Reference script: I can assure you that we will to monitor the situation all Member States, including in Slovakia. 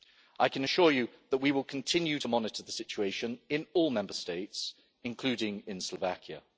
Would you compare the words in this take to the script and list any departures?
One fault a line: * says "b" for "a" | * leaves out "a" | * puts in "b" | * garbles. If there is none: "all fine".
* puts in "continue"
* puts in "in"